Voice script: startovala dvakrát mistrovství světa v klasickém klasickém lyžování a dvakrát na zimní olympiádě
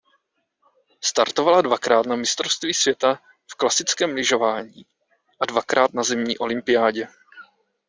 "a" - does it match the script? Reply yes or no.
yes